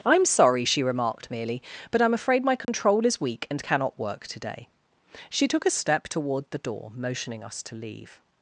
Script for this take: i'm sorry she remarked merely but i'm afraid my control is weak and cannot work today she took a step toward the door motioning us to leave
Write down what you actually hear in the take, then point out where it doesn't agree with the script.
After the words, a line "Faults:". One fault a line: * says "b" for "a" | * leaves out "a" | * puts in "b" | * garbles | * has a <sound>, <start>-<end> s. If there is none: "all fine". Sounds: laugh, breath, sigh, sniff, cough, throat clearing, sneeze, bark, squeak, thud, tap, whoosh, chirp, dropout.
i'm sorry she remarked merely but i'm afraid my control is weak and cannot work today she took a step toward the door motioning us to leave
Faults:
* has a dropout, 2.6-2.7 s